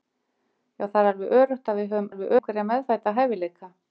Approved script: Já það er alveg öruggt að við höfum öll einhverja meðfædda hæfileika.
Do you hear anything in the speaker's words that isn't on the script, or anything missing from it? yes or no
yes